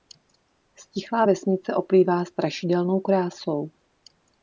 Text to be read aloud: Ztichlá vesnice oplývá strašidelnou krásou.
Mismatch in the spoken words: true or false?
false